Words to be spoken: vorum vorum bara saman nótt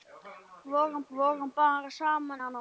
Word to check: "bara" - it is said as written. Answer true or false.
true